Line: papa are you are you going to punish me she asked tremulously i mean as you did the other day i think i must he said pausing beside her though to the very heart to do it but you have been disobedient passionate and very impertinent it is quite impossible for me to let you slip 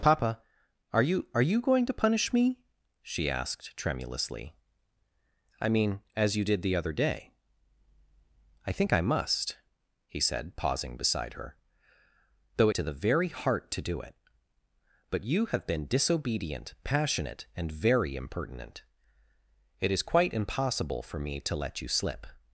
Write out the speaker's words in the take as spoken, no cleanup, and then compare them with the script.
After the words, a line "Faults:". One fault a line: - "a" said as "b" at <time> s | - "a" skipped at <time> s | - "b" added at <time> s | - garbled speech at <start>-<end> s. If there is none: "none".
papa are you are you going to punish me she asked tremulously i mean as you did the other day i think i must he said pausing beside her though to the very heart to do it but you have been disobedient passionate and very impertinent it is quite impossible for me to let you slip
Faults:
none